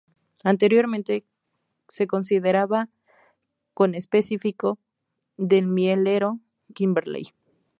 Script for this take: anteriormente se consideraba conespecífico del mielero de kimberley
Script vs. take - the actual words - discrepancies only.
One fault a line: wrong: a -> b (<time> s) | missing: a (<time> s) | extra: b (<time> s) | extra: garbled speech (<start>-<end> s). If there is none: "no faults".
missing: de (6.4 s)